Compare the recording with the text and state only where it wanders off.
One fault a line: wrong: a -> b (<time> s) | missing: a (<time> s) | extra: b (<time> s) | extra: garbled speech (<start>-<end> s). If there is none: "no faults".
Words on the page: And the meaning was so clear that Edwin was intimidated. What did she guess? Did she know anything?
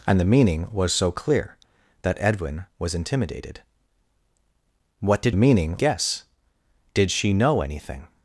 wrong: she -> meaning (5.3 s)